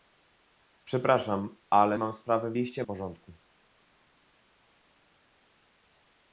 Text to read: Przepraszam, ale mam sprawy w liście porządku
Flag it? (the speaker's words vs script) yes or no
no